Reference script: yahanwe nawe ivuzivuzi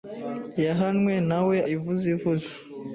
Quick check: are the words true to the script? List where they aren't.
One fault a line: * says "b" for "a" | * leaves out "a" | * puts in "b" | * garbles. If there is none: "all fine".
all fine